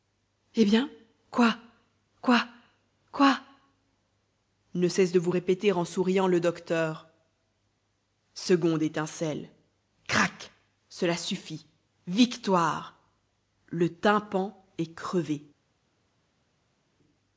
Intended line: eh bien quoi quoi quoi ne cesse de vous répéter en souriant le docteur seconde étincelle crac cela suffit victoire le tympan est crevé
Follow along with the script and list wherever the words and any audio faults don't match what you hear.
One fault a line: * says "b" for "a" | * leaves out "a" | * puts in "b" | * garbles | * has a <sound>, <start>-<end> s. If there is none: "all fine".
all fine